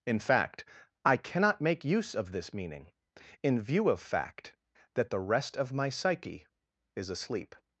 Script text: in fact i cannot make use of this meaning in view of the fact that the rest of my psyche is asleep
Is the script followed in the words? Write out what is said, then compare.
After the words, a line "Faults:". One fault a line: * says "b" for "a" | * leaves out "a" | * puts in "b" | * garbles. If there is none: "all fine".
in fact i cannot make use of this meaning in view of fact that the rest of my psyche is asleep
Faults:
* leaves out "the"